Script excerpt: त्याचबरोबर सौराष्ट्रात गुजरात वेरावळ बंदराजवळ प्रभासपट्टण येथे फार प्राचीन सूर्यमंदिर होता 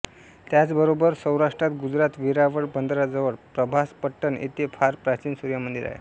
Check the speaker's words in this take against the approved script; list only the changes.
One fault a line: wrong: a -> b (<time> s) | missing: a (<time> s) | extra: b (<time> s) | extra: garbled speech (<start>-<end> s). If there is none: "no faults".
wrong: होता -> आहे (5.9 s)